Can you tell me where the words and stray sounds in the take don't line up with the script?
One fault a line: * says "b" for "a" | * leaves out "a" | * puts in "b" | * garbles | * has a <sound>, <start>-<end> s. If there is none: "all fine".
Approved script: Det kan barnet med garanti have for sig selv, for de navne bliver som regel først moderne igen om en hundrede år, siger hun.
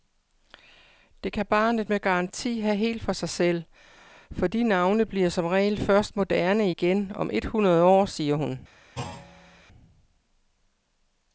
* puts in "helt"
* says "et" for "en"
* has a thud, 9.0-9.6 s